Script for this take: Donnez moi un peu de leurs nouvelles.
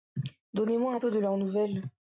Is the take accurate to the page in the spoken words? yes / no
yes